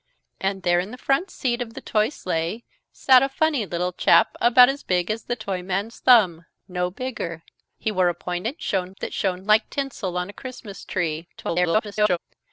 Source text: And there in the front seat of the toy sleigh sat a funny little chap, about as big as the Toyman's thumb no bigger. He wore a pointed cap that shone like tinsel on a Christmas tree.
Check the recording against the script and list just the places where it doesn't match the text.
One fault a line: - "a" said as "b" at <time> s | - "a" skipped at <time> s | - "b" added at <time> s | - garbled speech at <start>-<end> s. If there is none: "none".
- "cap" said as "shone" at 8.6 s
- garbled speech at 11.4-12.2 s